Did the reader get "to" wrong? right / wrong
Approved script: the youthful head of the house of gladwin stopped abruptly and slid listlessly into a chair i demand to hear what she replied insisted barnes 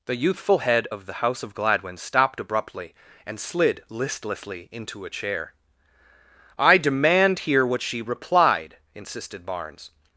wrong